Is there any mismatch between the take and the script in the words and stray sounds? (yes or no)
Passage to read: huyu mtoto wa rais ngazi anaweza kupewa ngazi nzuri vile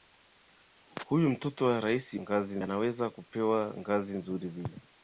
no